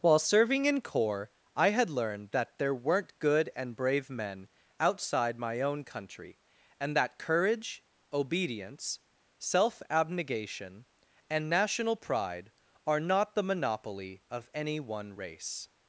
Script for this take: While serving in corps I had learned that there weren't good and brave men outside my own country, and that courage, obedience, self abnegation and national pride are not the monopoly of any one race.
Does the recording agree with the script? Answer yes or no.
yes